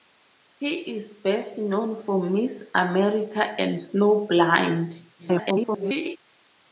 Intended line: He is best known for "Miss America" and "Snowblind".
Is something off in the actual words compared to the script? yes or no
yes